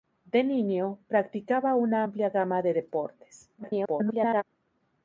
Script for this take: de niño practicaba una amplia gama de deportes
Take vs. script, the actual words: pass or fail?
fail